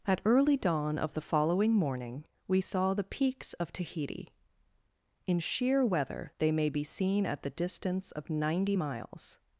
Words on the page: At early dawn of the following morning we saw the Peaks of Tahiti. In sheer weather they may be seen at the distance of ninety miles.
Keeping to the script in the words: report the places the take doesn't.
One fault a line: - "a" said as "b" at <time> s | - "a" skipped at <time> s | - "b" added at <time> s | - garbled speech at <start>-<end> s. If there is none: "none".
none